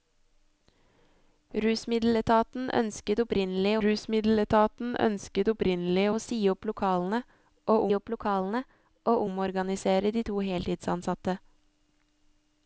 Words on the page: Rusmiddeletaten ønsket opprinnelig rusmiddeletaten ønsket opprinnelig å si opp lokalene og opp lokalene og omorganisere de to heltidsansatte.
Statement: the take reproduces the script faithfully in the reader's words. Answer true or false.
true